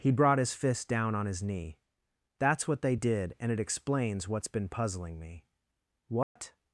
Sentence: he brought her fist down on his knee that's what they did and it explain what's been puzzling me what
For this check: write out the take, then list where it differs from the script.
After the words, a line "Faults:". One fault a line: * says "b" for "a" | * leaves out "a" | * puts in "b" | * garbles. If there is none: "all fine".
he brought his fist down on his knee that's what they did and it explains what's been puzzling me what
Faults:
* says "his" for "her"
* says "explains" for "explain"